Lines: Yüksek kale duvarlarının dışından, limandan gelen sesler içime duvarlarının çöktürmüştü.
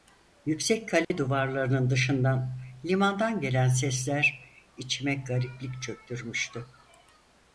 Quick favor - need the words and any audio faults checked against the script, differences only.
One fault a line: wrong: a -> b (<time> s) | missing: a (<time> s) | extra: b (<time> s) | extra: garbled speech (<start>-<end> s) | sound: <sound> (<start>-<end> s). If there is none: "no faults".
sound: dropout (1.0-1.1 s)
wrong: duvarlarının -> gariplik (5.1 s)